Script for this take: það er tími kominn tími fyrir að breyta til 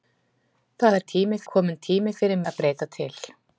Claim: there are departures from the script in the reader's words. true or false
false